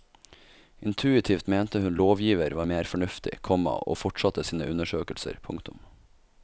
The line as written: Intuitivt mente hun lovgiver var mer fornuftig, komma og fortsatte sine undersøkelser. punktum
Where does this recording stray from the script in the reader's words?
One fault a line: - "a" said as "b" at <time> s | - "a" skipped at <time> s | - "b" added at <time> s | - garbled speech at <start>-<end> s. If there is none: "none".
none